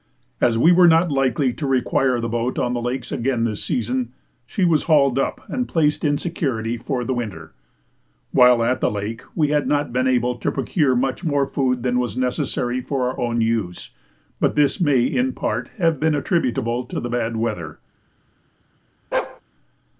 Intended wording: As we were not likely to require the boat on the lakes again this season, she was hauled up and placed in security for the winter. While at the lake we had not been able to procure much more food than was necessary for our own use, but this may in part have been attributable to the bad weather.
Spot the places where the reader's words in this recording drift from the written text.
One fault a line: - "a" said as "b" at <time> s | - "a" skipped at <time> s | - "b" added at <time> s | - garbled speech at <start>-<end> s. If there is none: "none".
none